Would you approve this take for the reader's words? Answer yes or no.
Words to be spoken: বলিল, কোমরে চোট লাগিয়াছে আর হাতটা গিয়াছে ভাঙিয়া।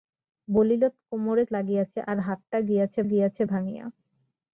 no